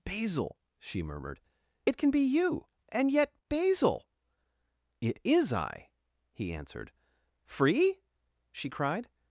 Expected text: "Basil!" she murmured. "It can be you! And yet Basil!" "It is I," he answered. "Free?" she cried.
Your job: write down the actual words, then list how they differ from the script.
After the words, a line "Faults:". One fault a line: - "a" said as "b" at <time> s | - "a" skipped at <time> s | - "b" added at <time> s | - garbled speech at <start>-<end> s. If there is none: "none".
"Basil!" she murmured. "It can be you! And yet Basil!" "It is I," he answered. "Free?" she cried.
Faults:
none